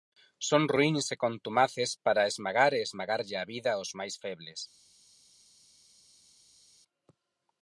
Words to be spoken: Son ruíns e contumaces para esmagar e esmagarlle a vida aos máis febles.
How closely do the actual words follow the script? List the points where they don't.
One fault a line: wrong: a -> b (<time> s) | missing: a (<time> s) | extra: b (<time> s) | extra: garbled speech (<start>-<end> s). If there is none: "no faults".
no faults